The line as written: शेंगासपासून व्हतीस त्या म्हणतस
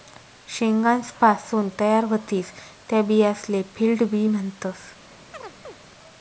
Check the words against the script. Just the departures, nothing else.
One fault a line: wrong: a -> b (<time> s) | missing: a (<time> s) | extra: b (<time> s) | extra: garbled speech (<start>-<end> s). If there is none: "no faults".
extra: तयार (1.8 s)
extra: बियासले फील्ड बी (3.0 s)